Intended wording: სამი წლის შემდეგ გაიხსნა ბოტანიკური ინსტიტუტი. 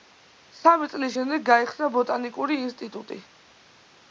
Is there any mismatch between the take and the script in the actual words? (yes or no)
no